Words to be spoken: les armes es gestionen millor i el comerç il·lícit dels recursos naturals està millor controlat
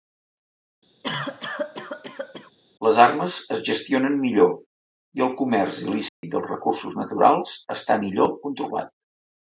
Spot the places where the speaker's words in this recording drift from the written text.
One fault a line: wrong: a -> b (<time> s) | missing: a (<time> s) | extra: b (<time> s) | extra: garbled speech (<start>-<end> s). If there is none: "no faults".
no faults